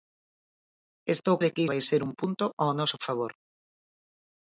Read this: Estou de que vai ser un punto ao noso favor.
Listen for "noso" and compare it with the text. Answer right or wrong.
right